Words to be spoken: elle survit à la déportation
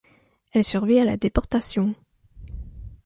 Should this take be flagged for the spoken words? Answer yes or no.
no